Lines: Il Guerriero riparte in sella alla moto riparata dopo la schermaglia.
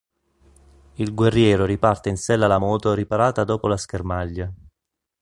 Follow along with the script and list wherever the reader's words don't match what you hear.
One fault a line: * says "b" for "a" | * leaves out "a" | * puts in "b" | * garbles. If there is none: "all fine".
all fine